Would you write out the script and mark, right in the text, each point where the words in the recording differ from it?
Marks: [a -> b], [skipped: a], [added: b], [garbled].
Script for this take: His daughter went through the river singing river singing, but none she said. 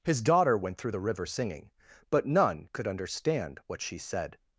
His daughter went through the river singing [river singing, but none -> but none could understand what] she said.